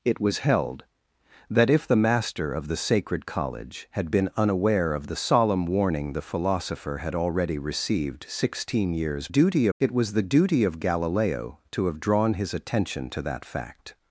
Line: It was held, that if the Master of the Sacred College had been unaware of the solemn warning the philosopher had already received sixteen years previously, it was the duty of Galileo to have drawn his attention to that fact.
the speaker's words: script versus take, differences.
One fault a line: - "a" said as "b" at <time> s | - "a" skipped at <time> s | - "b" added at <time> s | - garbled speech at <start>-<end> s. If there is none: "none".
- "previously" said as "duty" at 9.3 s